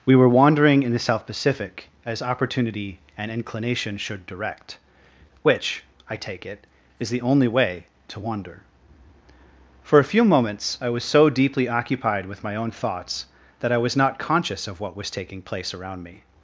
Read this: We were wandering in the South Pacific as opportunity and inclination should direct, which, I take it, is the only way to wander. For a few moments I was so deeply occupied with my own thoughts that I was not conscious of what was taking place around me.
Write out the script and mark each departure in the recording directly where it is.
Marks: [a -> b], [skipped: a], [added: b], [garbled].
We were wandering in the South Pacific as opportunity and inclination should direct, which, I take it, is the only way to wander. For a few moments I was so deeply occupied with my own thoughts that I was not conscious of what was taking place around me.